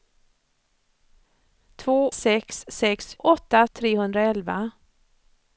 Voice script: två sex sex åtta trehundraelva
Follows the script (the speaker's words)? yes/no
yes